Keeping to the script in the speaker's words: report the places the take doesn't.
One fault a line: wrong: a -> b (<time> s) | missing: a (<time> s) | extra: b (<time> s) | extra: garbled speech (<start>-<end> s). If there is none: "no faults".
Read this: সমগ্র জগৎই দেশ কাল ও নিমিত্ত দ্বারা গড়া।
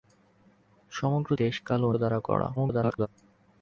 missing: জগৎই (1.3 s)
missing: নিমিত্ত (1.9 s)
extra: garbled speech (2.6-3.1 s)